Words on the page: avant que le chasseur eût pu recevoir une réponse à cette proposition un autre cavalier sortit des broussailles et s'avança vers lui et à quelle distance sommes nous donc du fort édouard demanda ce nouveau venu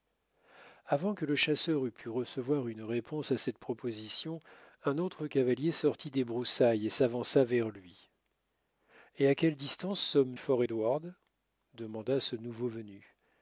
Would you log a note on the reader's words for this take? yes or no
yes